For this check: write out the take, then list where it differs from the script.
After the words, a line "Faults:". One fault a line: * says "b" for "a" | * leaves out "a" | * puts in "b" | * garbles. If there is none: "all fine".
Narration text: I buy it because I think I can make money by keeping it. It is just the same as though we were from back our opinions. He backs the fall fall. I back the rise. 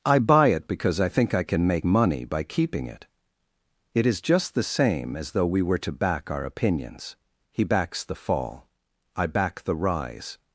I buy it because I think I can make money by keeping it. It is just the same as though we were to back our opinions. He backs the fall. I back the rise.
Faults:
* says "to" for "from"
* leaves out "fall"